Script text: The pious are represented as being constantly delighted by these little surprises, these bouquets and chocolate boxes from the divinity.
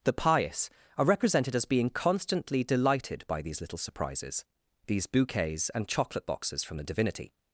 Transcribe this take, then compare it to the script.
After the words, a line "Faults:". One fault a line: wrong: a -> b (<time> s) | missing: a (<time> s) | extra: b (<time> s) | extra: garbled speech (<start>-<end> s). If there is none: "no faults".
The pious are represented as being constantly delighted by these little surprises, these bouquets and chocolate boxes from the divinity.
Faults:
no faults